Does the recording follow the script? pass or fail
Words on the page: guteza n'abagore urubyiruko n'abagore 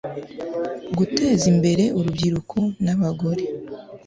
fail